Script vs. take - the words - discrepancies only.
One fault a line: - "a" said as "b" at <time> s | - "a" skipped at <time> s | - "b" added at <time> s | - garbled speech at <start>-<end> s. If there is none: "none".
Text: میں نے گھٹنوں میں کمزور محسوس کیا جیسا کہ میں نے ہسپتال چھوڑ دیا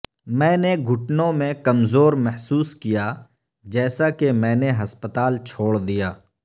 none